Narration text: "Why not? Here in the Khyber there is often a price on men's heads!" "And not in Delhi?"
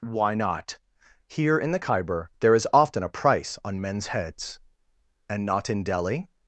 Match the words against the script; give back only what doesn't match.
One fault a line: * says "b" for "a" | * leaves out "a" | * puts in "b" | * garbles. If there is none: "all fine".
all fine